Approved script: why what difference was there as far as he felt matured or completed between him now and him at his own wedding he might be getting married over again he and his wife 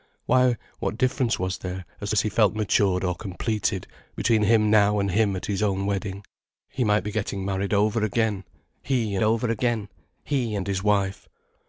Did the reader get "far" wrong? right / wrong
wrong